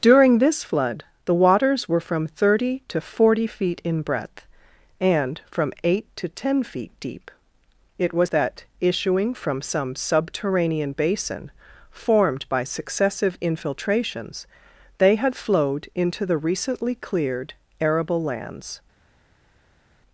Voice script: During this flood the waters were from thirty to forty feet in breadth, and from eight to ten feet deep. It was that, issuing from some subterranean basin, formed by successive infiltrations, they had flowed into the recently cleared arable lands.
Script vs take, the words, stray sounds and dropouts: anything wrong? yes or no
no